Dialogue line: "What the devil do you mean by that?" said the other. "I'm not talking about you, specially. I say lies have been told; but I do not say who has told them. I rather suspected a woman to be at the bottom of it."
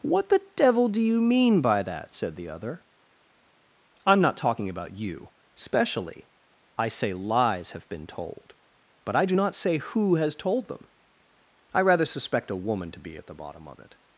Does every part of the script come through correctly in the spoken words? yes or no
no